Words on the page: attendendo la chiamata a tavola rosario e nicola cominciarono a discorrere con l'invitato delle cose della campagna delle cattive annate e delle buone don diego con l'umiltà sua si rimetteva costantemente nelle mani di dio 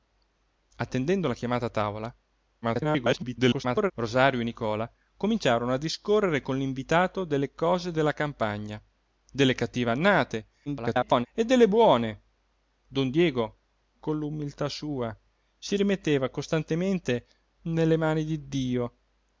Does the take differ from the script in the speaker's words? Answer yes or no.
yes